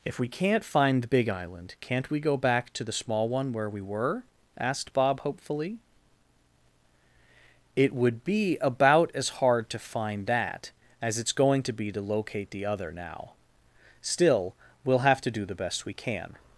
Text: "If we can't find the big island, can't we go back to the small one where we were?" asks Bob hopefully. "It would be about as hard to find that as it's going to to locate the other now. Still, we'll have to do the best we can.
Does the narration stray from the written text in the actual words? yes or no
yes